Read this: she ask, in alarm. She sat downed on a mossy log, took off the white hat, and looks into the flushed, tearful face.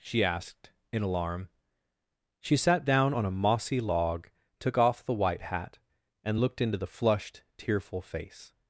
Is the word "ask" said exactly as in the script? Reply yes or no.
no